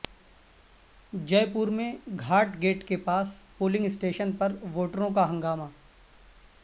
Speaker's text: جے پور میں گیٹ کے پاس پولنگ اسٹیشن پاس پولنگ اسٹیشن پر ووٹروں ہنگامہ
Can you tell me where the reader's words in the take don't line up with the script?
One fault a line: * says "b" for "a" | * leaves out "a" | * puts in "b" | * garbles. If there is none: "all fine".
* puts in "گھاٹ"
* leaves out "پاس پولنگ اسٹیشن"
* puts in "کا"